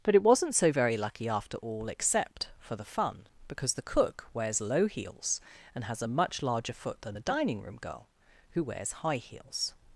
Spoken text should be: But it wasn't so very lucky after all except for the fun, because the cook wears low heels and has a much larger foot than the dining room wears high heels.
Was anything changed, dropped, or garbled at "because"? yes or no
no